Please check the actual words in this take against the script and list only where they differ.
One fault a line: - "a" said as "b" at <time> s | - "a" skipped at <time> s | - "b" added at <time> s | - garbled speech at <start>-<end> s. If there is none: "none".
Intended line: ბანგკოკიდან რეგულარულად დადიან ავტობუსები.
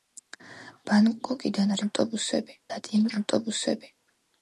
- "რეგულარულად" said as "ავტობუსები" at 1.9 s